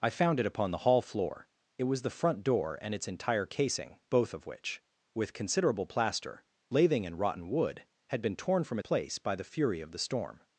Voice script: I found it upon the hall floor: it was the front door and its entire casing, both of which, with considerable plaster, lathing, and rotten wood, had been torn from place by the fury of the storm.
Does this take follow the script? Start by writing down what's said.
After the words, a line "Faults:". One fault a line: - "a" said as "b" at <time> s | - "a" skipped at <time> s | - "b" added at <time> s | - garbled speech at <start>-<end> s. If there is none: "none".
I found it upon the hall floor: it was the front door and its entire casing, both of which, with considerable plaster, lathing, and rotten wood, had been torn from place by the fury of the storm.
Faults:
none